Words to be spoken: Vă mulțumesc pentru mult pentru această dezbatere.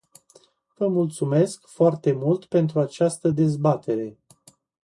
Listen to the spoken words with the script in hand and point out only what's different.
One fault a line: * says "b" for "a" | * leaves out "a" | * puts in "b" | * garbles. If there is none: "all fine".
* says "foarte" for "pentru"